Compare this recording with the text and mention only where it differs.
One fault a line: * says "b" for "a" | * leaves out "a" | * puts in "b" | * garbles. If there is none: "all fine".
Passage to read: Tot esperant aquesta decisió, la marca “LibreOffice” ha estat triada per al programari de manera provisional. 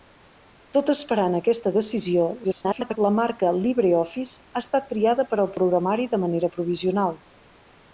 * garbles